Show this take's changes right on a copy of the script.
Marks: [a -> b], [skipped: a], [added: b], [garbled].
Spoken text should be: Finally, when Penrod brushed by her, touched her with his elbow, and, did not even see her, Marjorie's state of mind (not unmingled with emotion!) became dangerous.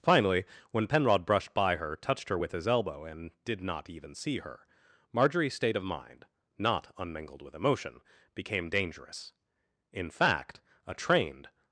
Finally, when Penrod brushed by her, touched her with his elbow, and, did not even see her, Marjorie's state of mind (not unmingled with emotion!) became dangerous. [added: In fact a trained]